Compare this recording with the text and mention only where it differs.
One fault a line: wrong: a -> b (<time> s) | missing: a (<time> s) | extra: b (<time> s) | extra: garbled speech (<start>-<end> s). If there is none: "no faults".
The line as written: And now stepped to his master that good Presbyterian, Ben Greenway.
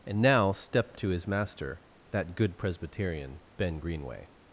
no faults